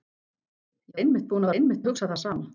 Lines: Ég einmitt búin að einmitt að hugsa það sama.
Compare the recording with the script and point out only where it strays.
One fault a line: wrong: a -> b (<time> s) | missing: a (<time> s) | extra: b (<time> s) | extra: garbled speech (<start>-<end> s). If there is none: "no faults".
no faults